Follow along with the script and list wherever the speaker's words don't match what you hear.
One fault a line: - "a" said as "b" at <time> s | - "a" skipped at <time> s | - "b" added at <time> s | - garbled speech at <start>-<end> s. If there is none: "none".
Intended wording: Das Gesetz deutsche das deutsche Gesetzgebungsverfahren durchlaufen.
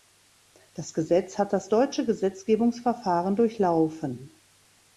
- "deutsche" said as "hat" at 1.4 s